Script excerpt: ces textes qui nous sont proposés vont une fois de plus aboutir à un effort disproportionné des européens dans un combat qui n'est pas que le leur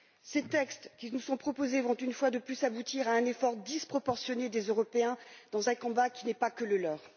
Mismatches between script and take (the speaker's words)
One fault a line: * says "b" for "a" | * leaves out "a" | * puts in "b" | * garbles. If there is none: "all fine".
all fine